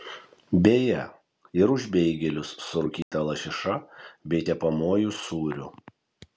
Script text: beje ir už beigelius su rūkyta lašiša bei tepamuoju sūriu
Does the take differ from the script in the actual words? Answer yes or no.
no